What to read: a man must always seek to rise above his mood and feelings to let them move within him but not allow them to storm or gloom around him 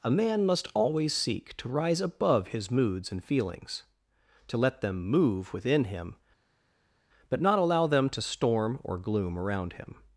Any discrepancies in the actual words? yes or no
yes